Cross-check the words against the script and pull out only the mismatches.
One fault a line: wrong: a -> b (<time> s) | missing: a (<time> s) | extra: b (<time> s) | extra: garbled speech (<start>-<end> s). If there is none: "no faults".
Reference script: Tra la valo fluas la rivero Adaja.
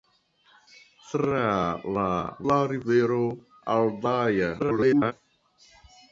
missing: valo fluas (2.0 s)
extra: garbled speech (4.6-5.1 s)